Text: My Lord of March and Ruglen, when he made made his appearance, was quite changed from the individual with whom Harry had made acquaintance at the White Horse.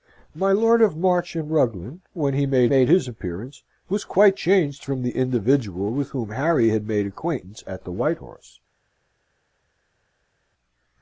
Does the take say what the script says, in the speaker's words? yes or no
yes